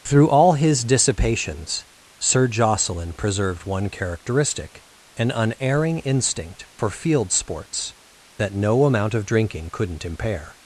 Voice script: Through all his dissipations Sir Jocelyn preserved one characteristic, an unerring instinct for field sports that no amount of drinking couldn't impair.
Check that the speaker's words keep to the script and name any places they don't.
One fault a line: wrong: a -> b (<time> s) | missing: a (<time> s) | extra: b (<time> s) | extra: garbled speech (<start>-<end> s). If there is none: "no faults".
no faults